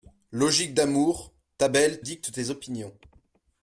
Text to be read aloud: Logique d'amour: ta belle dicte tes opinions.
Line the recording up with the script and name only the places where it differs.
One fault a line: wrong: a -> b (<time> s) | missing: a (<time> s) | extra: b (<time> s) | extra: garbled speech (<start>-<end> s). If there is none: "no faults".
no faults